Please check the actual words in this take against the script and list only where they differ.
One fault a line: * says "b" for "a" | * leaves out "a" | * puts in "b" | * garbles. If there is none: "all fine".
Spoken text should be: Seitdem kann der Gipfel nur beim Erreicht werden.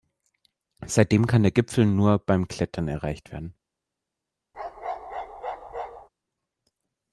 * puts in "Klettern"